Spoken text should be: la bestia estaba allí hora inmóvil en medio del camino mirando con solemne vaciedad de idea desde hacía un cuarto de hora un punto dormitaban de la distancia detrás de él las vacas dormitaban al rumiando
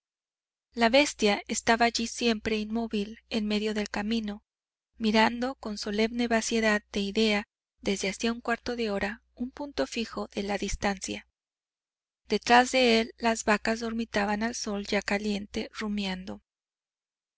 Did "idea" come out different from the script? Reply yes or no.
no